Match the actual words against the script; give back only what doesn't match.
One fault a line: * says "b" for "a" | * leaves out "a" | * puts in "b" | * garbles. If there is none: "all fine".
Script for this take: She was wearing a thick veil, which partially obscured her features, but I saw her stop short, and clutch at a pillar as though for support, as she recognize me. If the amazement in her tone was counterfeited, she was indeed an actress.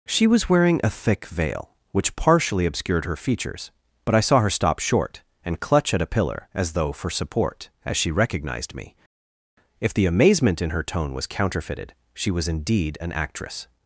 * says "recognized" for "recognize"